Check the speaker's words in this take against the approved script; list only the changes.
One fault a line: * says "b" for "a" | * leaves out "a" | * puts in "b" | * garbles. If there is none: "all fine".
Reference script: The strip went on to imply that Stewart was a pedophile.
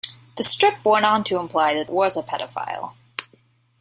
* leaves out "Stewart"